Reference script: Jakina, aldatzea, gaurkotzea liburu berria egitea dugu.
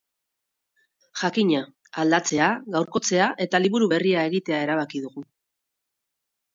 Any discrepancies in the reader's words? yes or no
yes